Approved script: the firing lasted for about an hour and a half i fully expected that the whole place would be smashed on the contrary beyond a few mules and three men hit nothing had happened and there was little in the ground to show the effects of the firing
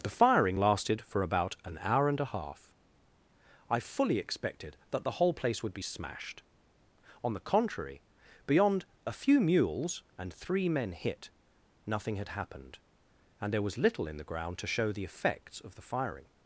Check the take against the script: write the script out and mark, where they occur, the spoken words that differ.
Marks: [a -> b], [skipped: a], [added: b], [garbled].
the firing lasted for about an hour and a half i fully expected that the whole place would be smashed on the contrary beyond a few mules and three men hit nothing had happened and there was little in the ground to show the effects of the firing